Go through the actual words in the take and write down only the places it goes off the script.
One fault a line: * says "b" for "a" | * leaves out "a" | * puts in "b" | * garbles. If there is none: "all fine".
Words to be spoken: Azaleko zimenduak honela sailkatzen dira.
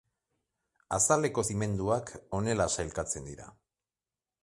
all fine